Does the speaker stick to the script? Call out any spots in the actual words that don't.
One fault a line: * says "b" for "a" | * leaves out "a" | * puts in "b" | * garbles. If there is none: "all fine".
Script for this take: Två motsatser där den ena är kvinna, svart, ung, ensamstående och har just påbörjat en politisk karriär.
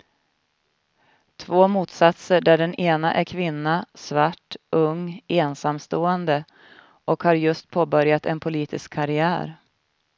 all fine